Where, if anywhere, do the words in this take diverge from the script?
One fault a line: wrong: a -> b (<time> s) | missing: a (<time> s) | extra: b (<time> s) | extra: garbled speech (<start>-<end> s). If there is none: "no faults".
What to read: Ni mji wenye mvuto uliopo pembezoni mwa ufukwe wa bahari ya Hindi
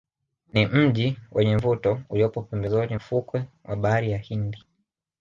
missing: mwa (3.0 s)